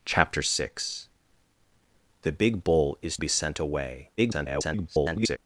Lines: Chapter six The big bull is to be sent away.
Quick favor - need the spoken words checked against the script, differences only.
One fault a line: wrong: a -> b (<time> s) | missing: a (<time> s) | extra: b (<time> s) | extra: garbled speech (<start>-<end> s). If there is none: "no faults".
missing: to (3.2 s)
extra: garbled speech (4.2-5.4 s)